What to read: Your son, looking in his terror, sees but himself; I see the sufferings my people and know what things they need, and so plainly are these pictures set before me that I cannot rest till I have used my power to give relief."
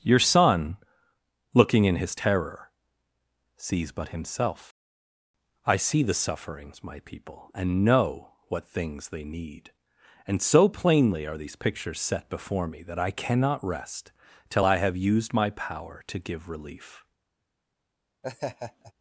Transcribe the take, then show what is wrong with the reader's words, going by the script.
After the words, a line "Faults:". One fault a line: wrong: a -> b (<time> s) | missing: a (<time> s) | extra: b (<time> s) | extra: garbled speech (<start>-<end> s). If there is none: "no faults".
Your son, looking in his terror, sees but himself; I see the sufferings my people and know what things they need, and so plainly are these pictures set before me that I cannot rest till I have used my power to give relief."
Faults:
no faults